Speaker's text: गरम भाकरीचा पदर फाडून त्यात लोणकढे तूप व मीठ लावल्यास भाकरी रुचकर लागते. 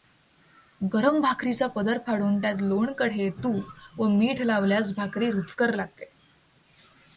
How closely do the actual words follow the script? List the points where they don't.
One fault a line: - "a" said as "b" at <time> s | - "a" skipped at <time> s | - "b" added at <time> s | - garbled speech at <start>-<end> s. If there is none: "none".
none